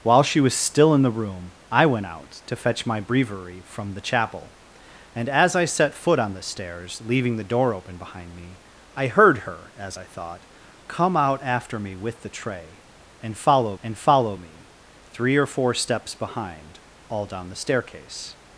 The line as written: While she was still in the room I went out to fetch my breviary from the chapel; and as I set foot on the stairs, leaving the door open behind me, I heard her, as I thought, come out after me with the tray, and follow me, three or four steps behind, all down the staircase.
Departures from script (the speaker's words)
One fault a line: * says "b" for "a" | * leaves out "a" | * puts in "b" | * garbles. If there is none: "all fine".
* puts in "and follow"